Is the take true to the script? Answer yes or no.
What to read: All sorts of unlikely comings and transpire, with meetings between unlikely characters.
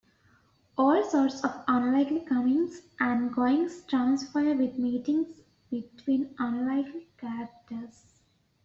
no